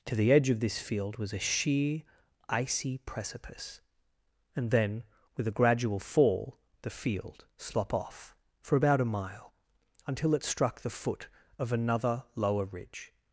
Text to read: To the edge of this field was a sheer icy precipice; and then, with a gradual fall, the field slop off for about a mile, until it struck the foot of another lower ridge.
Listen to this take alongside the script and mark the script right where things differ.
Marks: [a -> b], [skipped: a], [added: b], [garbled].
To the edge of this field was a sheer icy precipice; and then, with a gradual fall, the field slop off for about a mile, until it struck the foot of another lower ridge.